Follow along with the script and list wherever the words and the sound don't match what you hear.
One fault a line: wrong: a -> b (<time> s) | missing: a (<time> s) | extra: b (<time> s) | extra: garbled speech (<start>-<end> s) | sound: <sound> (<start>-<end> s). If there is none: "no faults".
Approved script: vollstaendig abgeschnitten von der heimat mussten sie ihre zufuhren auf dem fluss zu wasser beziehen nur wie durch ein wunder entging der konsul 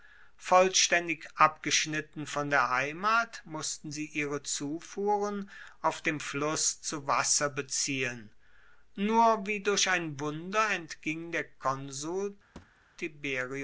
sound: thud (12.6-12.9 s)